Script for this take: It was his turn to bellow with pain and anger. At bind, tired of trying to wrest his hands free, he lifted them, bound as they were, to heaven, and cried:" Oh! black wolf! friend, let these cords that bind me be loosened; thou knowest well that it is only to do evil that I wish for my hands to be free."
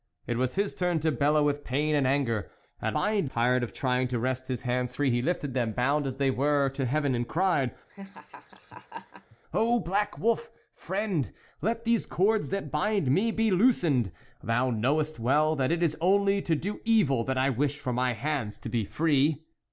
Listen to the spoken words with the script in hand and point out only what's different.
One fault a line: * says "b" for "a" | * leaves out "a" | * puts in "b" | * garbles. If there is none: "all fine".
all fine